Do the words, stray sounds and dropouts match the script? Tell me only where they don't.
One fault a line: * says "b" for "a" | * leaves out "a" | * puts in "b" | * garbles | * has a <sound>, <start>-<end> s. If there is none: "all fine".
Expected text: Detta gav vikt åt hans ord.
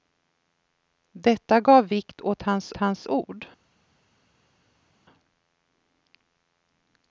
* puts in "hans"